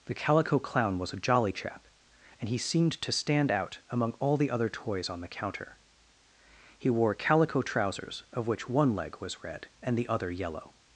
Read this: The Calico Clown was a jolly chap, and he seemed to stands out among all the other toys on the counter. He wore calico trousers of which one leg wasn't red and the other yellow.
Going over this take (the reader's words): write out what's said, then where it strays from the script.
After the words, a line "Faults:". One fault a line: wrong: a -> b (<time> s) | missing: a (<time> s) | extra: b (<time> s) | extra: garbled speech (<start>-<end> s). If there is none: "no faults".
The Calico Clown was a jolly chap, and he seemed to stand out among all the other toys on the counter. He wore calico trousers of which one leg was red and the other yellow.
Faults:
wrong: stands -> stand (3.1 s)
wrong: wasn't -> was (9.2 s)